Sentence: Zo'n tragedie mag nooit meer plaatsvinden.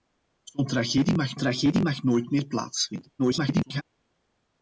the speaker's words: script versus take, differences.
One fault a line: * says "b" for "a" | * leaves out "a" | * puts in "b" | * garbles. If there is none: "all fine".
* puts in "tragedie mag"
* garbles